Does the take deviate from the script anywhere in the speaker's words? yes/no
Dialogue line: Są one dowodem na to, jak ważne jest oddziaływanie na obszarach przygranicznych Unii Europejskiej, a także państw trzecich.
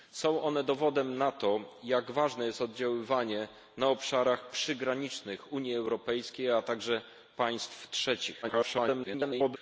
yes